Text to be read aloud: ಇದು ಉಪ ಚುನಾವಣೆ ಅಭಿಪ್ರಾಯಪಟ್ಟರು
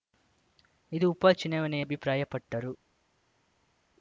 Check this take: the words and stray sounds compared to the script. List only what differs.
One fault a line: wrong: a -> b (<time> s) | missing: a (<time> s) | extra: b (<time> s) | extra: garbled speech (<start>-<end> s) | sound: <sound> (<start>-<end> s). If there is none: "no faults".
no faults